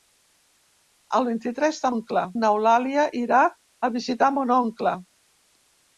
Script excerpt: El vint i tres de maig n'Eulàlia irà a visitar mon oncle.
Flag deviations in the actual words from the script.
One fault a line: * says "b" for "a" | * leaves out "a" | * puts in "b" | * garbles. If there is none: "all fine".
* says "oncle" for "maig"